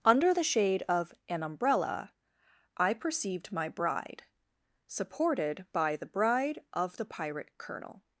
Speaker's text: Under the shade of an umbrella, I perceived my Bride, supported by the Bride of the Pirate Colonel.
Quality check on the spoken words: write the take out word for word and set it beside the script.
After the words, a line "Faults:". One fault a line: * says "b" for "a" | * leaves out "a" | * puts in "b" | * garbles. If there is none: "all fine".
Under the shade of an umbrella, I perceived my Bride, supported by the Bride of the Pirate Colonel.
Faults:
all fine